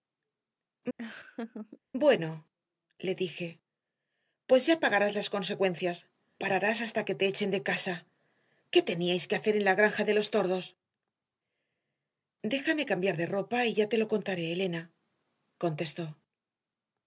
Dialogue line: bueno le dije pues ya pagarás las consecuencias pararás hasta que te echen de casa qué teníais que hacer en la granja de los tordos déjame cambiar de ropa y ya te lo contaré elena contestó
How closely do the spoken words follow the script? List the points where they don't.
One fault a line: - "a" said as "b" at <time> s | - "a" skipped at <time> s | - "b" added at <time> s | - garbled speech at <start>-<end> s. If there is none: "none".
none